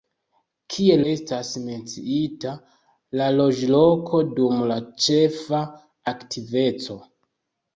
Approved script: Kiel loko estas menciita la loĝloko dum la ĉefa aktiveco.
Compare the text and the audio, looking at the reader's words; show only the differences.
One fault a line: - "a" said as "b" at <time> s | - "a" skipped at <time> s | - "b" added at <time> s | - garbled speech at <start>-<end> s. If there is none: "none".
- "loko" skipped at 1.0 s